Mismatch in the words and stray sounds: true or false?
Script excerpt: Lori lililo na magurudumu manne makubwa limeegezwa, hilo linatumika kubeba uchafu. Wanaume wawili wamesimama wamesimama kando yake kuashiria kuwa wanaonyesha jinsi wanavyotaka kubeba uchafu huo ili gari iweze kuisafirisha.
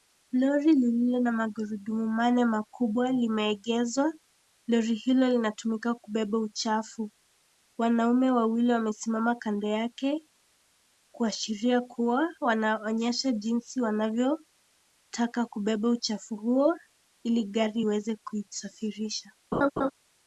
true